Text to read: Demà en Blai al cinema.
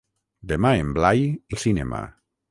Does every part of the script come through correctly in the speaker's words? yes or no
yes